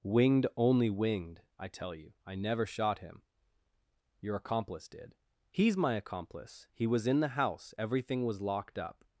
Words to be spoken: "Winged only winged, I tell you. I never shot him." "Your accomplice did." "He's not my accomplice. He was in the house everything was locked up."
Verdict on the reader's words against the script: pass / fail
fail